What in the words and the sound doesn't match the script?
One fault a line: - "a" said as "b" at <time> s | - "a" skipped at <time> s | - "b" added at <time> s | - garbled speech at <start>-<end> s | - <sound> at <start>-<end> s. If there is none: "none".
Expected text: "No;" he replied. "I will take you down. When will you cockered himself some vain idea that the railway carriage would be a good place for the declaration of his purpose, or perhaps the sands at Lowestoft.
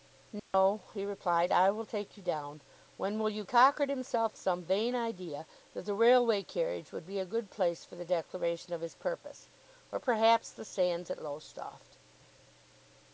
- dropout at 0.4-0.5 s